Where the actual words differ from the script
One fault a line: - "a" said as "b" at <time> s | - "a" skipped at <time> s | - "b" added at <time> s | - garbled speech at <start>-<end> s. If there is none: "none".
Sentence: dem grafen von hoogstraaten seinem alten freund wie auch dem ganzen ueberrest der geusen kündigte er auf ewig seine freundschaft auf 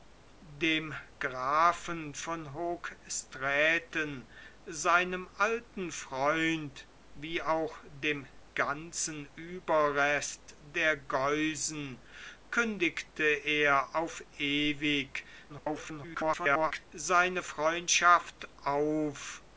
- garbled speech at 15.5-16.9 s